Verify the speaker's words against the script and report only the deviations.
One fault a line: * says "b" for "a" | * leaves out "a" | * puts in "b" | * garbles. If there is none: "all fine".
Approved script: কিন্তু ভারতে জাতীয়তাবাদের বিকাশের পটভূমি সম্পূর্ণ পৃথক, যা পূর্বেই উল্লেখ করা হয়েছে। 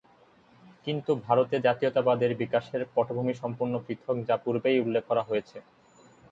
all fine